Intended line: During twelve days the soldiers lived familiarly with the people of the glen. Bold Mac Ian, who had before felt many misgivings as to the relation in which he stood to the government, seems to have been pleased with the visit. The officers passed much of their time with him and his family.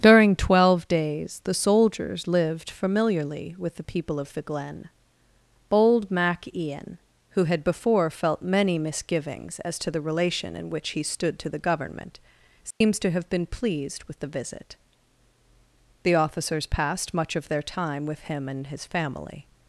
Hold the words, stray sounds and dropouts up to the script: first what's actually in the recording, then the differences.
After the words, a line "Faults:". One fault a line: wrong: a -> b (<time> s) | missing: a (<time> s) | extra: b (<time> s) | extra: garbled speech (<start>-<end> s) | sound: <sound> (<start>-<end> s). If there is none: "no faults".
During twelve days the soldiers lived familiarly with the people of the glen. Bold Mac Ian, who had before felt many misgivings as to the relation in which he stood to the government, seems to have been pleased with the visit. The officers passed much of their time with him and his family.
Faults:
sound: dropout (12.7-12.8 s)